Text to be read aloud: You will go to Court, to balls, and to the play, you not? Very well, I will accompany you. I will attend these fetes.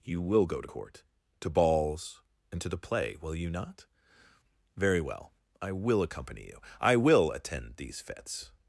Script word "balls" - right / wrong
right